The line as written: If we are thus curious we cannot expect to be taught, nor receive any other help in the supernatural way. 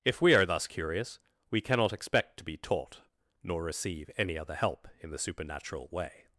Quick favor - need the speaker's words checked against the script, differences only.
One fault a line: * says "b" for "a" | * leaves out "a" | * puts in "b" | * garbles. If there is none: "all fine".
all fine